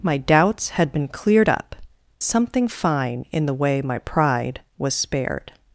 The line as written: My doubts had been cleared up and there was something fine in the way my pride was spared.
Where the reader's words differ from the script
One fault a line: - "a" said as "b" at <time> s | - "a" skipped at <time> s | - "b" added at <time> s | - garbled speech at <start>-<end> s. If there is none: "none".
- "and there was" skipped at 1.8 s